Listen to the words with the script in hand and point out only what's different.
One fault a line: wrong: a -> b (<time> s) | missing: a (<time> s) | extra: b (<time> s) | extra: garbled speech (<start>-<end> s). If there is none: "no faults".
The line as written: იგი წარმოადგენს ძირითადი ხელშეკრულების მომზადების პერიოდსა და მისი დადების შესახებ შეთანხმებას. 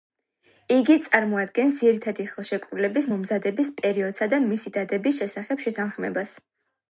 no faults